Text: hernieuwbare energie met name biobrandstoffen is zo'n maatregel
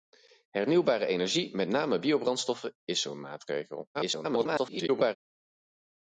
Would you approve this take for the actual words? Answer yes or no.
no